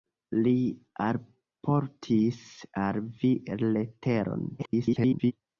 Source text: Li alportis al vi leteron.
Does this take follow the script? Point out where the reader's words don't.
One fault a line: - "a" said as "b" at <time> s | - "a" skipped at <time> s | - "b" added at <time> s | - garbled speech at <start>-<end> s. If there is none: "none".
- garbled speech at 4.6-5.3 s